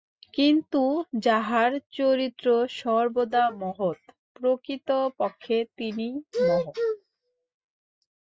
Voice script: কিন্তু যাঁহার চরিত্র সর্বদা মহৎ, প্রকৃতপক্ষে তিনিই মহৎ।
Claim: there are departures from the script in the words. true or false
false